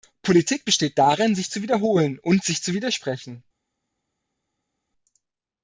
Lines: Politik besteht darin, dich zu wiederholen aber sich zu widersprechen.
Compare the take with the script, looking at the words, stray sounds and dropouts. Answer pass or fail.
fail